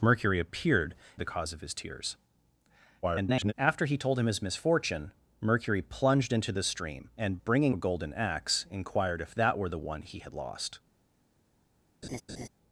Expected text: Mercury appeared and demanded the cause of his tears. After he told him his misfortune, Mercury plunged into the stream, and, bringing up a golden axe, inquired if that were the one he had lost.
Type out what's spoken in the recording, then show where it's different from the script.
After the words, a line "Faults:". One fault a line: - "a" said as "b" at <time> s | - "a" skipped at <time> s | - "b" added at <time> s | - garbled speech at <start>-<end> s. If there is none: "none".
Mercury appeared the cause of his tears. [garbled] After he told him his misfortune, Mercury plunged into the stream, and, bringing a golden axe, inquired if that were the one he had lost.
Faults:
- "and demanded" skipped at 0.9 s
- garbled speech at 3.0-3.5 s
- "up" skipped at 7.7 s